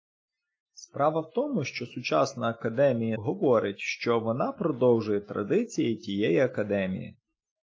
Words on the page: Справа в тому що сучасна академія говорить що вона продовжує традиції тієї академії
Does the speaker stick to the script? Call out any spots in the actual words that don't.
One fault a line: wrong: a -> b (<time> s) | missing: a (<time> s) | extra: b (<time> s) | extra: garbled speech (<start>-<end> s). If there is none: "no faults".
no faults